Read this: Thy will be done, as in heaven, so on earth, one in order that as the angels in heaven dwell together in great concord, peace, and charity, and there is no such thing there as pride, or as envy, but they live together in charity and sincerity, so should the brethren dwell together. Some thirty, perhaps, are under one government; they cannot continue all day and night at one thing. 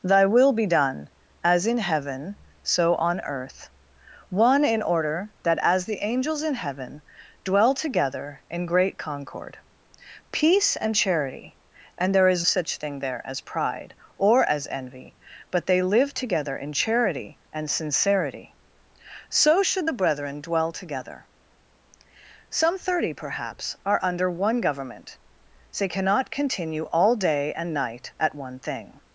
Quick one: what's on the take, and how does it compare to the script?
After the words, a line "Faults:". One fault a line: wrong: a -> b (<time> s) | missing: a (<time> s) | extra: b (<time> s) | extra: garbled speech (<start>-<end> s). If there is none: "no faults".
Thy will be done, as in heaven, so on earth, one in order that as the angels in heaven dwell together in great concord, peace, and charity, and there is such thing there as pride, or as envy, but they live together in charity and sincerity, so should the brethren dwell together. Some thirty, perhaps, are under one government; they cannot continue all day and night at one thing.
Faults:
missing: no (12.5 s)